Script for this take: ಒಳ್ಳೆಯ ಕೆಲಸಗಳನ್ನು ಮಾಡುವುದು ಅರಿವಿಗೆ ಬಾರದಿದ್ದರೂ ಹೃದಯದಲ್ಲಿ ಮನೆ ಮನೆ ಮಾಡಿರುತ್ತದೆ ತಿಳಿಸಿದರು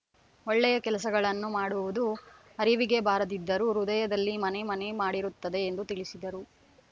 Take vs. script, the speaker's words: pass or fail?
fail